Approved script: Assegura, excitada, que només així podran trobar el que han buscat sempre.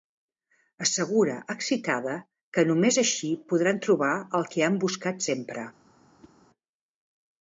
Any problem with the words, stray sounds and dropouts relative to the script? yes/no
yes